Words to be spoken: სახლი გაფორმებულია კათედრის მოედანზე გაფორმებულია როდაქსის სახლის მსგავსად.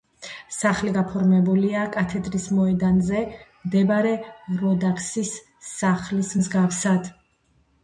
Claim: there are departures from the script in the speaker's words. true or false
true